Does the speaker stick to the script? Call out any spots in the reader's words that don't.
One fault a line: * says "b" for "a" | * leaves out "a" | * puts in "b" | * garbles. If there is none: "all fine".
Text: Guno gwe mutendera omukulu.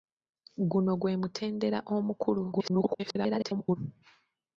* garbles